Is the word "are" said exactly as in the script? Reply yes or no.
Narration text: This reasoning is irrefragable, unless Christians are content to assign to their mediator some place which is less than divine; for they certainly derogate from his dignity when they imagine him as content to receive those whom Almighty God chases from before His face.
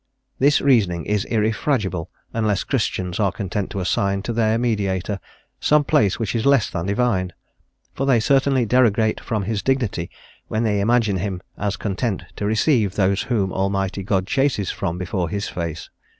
yes